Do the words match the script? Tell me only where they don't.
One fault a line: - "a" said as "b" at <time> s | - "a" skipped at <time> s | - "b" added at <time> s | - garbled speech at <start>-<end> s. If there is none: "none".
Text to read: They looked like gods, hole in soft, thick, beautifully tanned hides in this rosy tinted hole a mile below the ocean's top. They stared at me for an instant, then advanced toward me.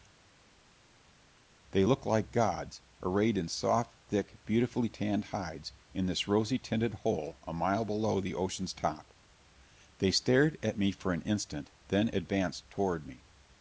- "hole" said as "arrayed" at 3.0 s